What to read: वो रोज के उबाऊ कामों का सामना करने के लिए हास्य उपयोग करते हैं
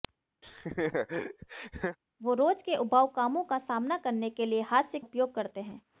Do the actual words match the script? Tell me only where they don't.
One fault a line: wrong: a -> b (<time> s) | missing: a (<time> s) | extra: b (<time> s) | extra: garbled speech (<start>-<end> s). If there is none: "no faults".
no faults